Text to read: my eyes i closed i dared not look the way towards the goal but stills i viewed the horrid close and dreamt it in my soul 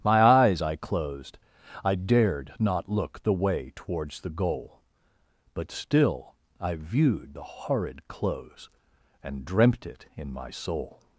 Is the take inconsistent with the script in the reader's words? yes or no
yes